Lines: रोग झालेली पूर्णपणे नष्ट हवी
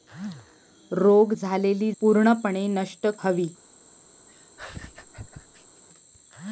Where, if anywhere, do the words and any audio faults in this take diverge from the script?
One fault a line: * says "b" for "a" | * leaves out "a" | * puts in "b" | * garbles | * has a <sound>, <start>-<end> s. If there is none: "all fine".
* has a laugh, 4.3-5.8 s